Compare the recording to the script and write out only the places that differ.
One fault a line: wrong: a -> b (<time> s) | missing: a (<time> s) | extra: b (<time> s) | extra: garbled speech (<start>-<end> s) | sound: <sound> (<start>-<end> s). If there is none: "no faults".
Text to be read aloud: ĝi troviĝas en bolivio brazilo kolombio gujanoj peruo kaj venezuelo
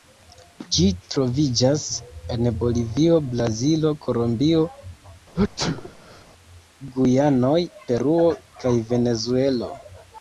sound: sneeze (5.3-6.2 s)